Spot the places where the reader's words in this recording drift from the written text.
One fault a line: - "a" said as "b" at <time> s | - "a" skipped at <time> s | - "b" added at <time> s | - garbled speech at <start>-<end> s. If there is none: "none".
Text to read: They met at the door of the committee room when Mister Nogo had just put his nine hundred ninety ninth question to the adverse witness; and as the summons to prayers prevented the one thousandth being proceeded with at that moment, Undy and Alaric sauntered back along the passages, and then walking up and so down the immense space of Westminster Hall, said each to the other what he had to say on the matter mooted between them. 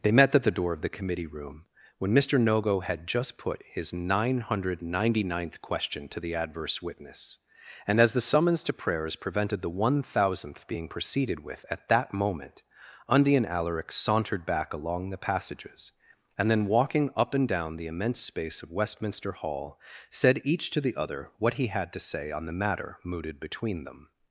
- "so" skipped at 17.5 s